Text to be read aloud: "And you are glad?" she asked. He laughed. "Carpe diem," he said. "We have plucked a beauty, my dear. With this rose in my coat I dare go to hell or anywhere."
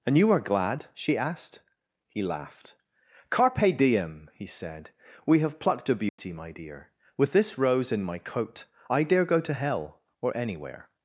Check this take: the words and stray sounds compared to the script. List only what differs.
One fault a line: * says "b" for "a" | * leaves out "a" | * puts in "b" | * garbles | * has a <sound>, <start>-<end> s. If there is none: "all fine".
* has a dropout, 6.1-6.2 s